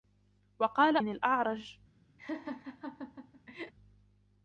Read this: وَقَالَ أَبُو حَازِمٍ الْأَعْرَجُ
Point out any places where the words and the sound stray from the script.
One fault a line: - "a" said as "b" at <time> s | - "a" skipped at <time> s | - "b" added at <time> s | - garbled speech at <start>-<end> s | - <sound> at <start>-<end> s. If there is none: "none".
- "أَبُو حَازِمٍ" skipped at 1.0 s
- laugh at 2.2-3.7 s